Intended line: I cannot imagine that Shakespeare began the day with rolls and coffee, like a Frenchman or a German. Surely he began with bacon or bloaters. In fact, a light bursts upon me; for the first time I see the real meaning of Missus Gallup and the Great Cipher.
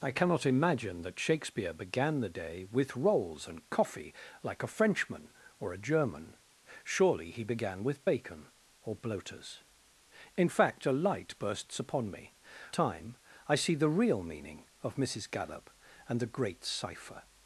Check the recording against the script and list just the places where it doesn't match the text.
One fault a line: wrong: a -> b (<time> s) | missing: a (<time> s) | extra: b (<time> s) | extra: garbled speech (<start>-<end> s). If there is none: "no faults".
missing: for the first (12.4 s)